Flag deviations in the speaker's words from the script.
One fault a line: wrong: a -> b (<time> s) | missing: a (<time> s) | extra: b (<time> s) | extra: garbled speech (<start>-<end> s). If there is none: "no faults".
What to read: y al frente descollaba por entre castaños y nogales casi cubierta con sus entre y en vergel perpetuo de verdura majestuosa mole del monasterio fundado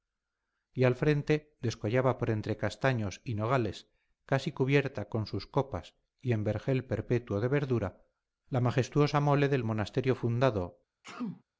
wrong: entre -> copas (5.5 s)
extra: la (8.5 s)